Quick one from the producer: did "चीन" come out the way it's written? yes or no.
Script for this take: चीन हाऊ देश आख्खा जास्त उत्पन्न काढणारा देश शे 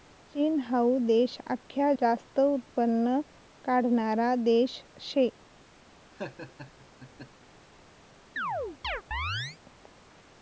yes